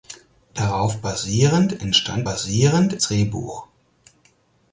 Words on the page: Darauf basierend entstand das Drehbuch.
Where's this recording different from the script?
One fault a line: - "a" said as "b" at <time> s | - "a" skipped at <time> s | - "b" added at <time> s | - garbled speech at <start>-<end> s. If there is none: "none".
- "das" said as "basierend" at 2.2 s